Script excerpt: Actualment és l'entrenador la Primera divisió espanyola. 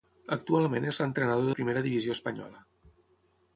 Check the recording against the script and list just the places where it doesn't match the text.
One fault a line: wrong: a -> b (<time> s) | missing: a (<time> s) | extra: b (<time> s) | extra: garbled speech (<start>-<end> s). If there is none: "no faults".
no faults